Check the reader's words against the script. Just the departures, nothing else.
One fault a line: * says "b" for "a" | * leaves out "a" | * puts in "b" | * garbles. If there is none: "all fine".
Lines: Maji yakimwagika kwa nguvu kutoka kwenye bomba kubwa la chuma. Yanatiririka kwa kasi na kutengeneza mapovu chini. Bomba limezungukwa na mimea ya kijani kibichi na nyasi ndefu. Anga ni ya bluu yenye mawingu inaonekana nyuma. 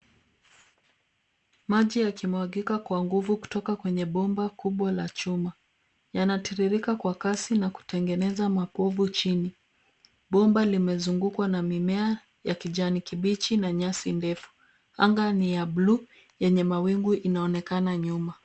all fine